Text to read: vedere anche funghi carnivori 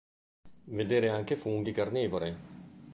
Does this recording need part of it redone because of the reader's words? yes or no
no